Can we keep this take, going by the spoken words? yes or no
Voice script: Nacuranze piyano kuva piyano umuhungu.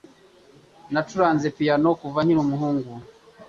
no